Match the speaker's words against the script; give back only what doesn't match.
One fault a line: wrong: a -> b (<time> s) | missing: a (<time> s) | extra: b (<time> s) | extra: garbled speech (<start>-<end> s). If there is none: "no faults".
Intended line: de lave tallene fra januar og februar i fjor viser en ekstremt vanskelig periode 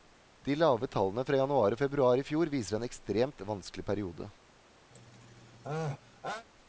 no faults